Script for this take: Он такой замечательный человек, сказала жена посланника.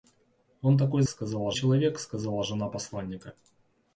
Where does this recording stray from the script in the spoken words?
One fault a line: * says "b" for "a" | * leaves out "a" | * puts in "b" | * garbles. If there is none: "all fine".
* says "сказала" for "замечательный"